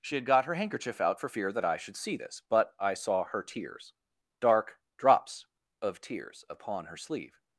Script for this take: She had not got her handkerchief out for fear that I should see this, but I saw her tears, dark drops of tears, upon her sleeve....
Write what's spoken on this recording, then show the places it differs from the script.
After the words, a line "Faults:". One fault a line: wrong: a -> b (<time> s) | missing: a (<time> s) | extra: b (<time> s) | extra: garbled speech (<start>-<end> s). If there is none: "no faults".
She had got her handkerchief out for fear that I should see this, but I saw her tears, dark drops of tears, upon her sleeve....
Faults:
missing: not (0.2 s)